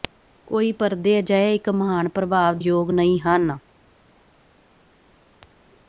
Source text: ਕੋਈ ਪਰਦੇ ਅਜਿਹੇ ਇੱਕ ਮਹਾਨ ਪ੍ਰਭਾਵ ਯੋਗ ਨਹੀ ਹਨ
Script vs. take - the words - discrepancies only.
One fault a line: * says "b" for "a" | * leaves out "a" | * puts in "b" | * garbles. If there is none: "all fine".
all fine